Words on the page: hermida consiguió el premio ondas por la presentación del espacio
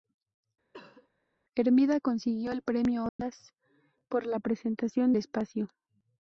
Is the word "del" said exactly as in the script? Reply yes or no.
no